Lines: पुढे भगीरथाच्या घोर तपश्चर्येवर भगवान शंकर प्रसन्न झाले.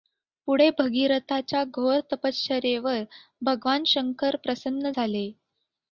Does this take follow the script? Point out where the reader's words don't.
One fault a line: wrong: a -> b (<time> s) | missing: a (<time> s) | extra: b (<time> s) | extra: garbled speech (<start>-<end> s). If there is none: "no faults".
no faults